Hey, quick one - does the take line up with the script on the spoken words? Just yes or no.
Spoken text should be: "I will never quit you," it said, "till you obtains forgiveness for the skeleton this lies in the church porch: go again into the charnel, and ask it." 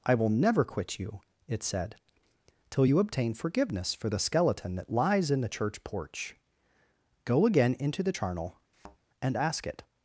no